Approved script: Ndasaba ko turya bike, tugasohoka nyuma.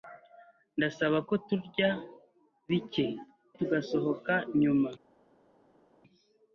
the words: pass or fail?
pass